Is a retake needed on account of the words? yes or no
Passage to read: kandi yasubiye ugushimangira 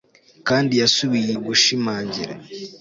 no